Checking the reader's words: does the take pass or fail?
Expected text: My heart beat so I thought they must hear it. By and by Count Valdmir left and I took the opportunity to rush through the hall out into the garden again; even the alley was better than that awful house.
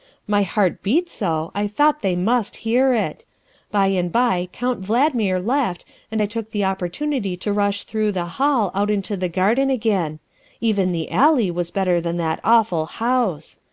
pass